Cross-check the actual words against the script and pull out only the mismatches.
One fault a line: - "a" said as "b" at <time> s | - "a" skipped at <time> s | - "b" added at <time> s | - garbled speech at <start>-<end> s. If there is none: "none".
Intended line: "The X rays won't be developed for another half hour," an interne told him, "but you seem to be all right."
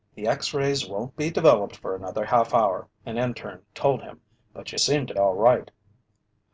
- "be" skipped at 5.1 s